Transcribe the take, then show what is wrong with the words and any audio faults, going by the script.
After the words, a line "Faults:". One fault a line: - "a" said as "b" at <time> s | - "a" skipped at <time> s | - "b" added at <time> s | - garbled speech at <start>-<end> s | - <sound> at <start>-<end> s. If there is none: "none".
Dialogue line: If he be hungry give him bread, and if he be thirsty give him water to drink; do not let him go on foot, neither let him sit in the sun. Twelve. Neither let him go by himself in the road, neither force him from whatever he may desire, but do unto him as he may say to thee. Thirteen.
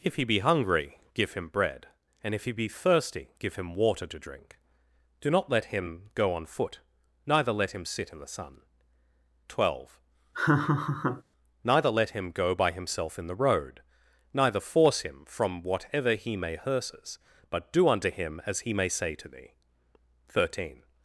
If he be hungry give him bread, and if he be thirsty give him water to drink; do not let him go on foot, neither let him sit in the sun. Twelve. Neither let him go by himself in the road, neither force him from whatever he may hearses, but do unto him as he may say to thee. Thirteen.
Faults:
- laugh at 10.3-11.2 s
- "desire" said as "hearses" at 16.6 s